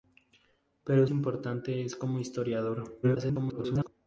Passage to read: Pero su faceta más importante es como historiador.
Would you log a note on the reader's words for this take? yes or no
yes